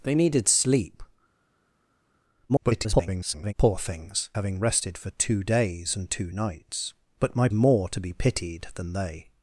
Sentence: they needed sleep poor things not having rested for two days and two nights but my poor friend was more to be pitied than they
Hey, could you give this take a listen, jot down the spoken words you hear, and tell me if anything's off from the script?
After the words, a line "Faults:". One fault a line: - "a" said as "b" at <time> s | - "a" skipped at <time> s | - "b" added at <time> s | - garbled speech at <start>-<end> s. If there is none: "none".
they needed sleep [garbled] poor things having rested for two days and two nights but my more to be pitied than they
Faults:
- garbled speech at 2.5-3.5 s
- "not" skipped at 4.3 s
- "poor friend was" skipped at 7.5 s